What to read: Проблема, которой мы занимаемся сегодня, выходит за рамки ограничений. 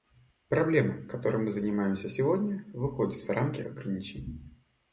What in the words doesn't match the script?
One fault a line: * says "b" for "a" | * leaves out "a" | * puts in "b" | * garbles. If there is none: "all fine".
all fine